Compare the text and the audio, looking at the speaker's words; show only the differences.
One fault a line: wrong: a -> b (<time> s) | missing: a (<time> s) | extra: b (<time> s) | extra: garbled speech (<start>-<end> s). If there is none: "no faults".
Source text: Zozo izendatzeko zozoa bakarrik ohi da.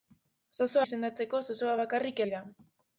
no faults